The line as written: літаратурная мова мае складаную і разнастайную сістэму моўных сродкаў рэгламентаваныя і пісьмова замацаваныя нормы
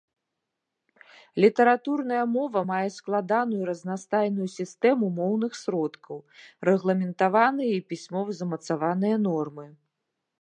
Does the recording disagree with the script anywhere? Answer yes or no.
no